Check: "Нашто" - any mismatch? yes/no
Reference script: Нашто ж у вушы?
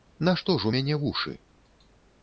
no